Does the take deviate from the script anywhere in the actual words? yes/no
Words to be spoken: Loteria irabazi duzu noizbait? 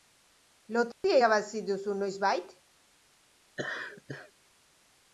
no